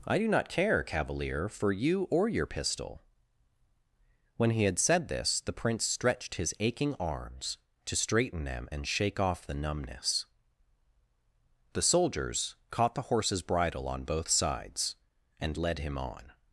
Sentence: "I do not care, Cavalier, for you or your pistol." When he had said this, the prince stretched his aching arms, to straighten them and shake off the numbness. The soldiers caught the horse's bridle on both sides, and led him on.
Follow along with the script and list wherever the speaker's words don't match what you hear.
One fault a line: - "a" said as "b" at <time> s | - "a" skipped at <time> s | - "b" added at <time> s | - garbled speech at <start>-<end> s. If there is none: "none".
none